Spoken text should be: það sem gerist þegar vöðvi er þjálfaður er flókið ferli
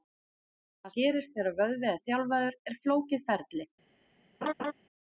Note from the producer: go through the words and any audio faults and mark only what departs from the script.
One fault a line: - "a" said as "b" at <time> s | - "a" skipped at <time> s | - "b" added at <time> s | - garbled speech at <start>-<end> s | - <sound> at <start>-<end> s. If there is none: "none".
- "sem" skipped at 0.9 s
- laugh at 4.4-4.7 s